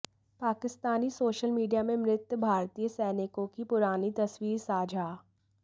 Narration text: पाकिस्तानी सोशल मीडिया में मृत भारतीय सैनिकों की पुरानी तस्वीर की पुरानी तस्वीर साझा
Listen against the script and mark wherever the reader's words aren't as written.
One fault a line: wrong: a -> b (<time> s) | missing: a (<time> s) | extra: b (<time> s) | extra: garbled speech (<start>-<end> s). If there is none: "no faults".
missing: की पुरानी तस्वीर (4.6 s)